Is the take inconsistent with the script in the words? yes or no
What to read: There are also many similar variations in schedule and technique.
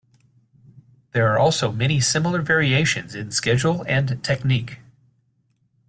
no